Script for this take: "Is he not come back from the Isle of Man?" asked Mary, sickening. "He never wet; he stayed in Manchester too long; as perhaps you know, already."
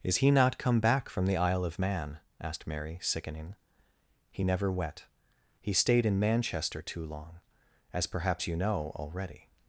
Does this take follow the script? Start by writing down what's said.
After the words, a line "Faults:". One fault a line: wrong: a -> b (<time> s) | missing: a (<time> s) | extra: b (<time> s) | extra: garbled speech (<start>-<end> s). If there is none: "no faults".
"Is he not come back from the Isle of Man?" asked Mary, sickening. "He never wet; he stayed in Manchester too long; as perhaps you know, already."
Faults:
no faults